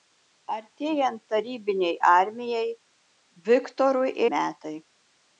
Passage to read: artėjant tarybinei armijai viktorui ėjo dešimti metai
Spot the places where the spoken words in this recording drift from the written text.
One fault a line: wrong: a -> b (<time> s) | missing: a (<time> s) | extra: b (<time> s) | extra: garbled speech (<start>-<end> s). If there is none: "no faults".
missing: ėjo dešimti (4.2 s)